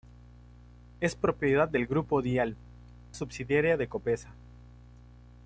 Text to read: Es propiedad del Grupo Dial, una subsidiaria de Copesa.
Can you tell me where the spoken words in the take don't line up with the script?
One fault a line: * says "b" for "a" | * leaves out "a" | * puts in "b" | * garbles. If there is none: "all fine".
* leaves out "una"